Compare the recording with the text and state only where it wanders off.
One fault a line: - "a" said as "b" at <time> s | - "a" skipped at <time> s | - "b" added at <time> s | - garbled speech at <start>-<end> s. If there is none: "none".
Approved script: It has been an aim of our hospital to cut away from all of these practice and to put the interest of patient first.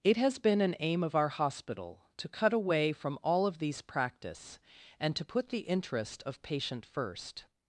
none